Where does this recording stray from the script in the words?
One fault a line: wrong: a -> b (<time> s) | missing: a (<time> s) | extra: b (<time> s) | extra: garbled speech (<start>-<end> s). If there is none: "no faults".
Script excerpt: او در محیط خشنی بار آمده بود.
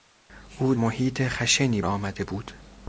missing: در (0.8 s)
missing: بار (1.8 s)